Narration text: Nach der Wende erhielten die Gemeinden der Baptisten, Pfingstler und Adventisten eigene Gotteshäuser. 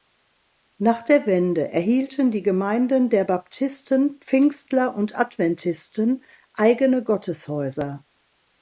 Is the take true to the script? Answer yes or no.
yes